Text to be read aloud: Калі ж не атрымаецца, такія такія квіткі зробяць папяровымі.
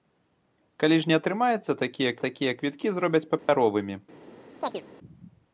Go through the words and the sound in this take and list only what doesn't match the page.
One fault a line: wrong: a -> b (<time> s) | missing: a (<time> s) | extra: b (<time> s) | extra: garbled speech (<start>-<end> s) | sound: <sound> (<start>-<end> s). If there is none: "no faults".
sound: dropout (3.4-3.5 s)
sound: chirp (4.6-4.8 s)